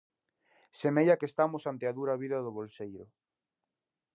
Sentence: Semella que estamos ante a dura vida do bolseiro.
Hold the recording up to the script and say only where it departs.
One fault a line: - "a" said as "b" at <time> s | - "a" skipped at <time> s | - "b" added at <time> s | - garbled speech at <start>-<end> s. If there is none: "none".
none